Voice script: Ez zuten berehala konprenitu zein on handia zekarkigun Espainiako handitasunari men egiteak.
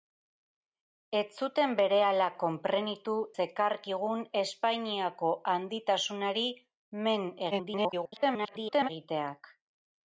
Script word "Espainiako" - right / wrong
right